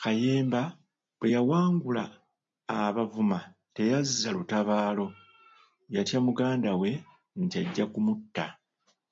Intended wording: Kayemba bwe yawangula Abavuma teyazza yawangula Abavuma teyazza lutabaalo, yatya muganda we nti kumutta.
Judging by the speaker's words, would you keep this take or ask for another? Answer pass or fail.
fail